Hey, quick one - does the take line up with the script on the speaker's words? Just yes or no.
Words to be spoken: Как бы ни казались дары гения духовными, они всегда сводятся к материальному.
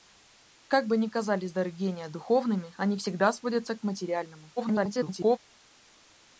no